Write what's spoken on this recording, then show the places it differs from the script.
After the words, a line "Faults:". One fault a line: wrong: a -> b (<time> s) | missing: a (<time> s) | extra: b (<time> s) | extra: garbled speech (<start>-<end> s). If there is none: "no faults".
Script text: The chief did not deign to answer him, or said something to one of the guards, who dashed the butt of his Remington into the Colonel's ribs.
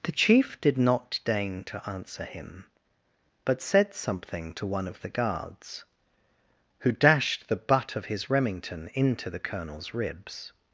The chief did not deign to answer him, but said something to one of the guards, who dashed the butt of his Remington into the Colonel's ribs.
Faults:
wrong: or -> but (3.5 s)